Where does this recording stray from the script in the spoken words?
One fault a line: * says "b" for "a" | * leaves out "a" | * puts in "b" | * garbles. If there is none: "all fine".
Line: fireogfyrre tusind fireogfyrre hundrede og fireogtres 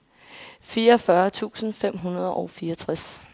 * says "fem" for "fireogfyrre"